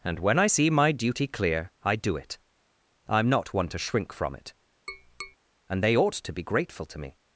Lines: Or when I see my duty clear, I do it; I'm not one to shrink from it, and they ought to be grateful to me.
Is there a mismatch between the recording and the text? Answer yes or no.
yes